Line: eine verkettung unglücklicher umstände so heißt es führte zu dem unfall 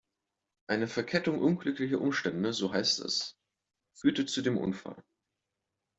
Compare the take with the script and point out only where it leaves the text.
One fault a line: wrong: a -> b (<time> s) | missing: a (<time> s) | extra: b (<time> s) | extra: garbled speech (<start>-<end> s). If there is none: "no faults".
no faults